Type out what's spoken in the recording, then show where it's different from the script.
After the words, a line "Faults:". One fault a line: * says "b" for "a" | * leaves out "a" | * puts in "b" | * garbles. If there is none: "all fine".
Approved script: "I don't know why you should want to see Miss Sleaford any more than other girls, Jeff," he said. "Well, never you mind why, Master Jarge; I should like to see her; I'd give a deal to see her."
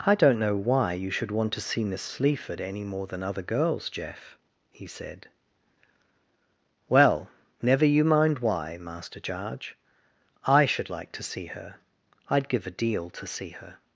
"I don't know why you should want to see Miss Sleaford any more than other girls, Jeff," he said. "Well, never you mind why, Master Jarge; I should like to see her; I'd give a deal to see her."
Faults:
all fine